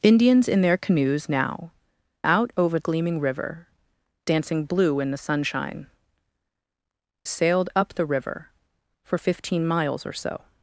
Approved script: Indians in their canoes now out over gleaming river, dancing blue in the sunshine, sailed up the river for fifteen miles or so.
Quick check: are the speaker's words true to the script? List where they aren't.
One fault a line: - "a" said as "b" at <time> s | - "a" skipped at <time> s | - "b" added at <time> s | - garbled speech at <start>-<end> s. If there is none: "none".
none